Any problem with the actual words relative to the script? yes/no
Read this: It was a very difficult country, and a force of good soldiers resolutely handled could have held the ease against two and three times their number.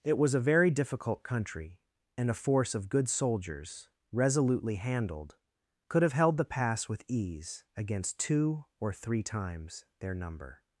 yes